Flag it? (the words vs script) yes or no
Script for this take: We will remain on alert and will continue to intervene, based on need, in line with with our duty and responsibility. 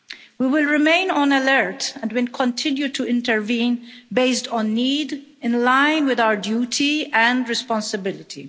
yes